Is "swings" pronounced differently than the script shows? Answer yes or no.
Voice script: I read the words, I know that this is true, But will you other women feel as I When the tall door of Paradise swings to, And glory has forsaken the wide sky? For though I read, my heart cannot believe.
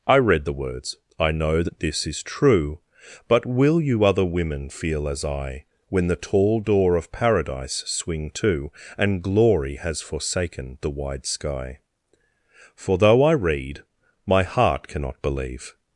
yes